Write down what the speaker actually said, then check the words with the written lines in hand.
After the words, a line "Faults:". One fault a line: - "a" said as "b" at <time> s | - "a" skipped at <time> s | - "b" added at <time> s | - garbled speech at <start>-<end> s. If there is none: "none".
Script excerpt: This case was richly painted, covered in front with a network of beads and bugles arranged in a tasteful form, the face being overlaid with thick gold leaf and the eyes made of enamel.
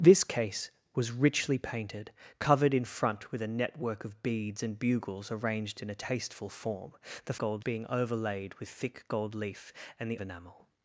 This case was richly painted, covered in front with a network of beads and bugles arranged in a tasteful form, the gold being overlaid with thick gold leaf and the enamel.
Faults:
- "face" said as "gold" at 7.4 s
- "eyes made of" skipped at 10.2 s